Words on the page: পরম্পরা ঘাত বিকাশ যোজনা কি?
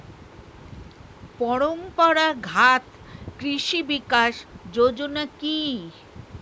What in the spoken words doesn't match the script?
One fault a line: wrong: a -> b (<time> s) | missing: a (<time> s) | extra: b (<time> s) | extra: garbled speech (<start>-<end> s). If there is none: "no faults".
extra: কৃষি (3.4 s)